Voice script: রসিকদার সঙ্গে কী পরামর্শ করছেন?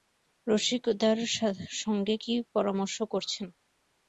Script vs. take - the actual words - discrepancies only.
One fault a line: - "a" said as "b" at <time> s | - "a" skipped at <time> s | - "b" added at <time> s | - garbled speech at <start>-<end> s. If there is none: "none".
none